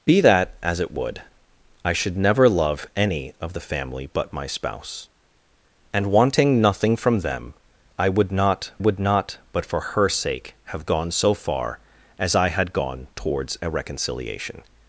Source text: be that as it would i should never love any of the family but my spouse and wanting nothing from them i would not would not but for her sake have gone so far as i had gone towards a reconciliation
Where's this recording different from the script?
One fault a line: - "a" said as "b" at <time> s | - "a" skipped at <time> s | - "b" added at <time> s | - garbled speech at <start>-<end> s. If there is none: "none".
none